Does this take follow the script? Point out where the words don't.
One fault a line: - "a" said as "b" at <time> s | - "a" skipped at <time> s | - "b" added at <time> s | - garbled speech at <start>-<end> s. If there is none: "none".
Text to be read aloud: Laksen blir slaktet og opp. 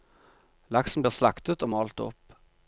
- "malt" added at 1.7 s